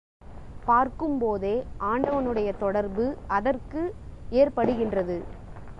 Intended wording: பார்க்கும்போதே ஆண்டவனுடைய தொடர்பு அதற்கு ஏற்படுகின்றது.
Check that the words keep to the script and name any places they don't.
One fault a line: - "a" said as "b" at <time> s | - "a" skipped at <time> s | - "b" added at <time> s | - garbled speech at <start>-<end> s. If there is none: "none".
none